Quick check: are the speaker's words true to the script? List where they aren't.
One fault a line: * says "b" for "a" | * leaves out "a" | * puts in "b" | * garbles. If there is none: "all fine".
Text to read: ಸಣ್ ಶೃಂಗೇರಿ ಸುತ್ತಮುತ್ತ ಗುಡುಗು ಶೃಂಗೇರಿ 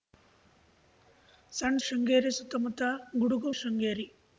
all fine